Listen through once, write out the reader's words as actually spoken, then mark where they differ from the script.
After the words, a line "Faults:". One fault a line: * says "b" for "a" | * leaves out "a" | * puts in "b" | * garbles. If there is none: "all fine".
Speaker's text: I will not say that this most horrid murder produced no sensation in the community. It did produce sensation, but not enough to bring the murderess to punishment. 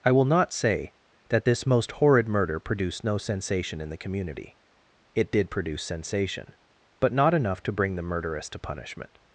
I will not say that this most horrid murder produced no sensation in the community. It did produce sensation, but not enough to bring the murderess to punishment.
Faults:
all fine